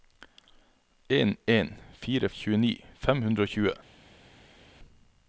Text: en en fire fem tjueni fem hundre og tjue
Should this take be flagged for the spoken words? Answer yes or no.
yes